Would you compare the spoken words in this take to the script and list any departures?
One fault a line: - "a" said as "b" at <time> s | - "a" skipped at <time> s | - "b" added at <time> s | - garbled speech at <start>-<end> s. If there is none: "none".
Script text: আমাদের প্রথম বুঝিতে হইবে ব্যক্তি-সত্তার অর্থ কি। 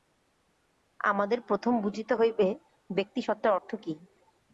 none